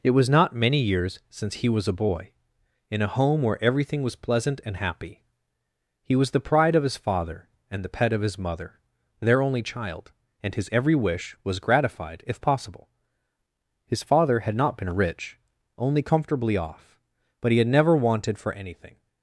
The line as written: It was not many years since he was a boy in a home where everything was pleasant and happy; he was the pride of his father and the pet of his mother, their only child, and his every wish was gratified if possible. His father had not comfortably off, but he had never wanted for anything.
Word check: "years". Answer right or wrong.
right